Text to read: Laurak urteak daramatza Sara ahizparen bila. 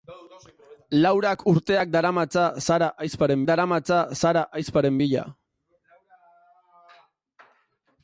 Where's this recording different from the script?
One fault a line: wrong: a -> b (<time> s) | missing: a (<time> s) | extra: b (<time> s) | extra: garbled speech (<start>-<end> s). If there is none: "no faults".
extra: daramatza Sara ahizparen (3.5 s)